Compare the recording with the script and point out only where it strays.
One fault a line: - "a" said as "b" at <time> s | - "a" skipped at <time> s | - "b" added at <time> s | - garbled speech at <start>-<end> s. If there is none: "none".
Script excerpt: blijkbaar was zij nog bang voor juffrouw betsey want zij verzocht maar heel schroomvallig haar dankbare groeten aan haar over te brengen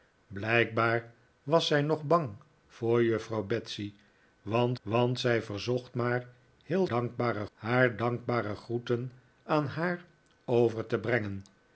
- "want" added at 4.8 s
- "schroomvallig" said as "dankbare" at 6.9 s